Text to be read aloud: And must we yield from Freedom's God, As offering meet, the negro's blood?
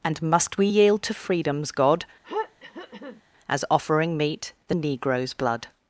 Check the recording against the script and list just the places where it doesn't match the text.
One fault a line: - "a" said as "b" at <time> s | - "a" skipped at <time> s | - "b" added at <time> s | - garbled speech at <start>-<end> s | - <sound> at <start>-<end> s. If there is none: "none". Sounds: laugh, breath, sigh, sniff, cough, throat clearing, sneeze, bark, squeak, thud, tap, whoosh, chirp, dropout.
- "from" said as "to" at 1.0 s
- throat clearing at 2.2-3.2 s